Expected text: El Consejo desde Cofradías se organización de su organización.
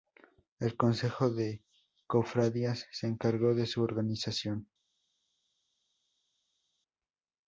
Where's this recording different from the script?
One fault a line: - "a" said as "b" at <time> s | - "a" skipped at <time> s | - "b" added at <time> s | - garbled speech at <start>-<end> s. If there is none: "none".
- "desde" said as "de" at 1.3 s
- "organización" said as "encargó" at 3.1 s